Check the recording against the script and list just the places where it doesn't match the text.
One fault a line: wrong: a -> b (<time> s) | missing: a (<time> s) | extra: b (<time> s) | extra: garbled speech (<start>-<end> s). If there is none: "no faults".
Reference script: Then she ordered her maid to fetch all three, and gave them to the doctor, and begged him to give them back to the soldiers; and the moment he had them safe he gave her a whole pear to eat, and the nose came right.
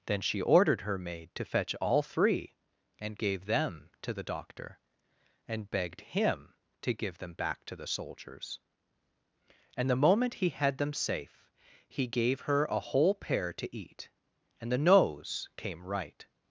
no faults